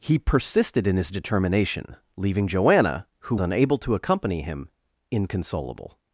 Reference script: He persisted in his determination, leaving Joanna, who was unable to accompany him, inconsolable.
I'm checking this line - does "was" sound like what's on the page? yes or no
no